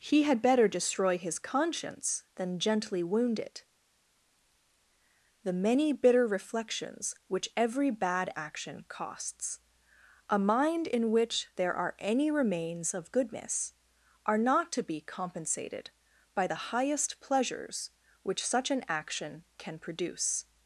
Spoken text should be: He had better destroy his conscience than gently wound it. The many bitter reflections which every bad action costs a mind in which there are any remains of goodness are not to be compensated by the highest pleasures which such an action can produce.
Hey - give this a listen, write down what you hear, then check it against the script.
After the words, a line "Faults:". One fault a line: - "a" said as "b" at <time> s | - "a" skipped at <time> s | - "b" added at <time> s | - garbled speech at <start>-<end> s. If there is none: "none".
He had better destroy his conscience than gently wound it. The many bitter reflections which every bad action costs a mind in which there are any remains of goodness are not to be compensated by the highest pleasures which such an action can produce.
Faults:
none